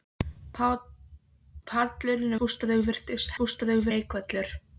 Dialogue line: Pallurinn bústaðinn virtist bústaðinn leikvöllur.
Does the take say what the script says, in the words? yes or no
yes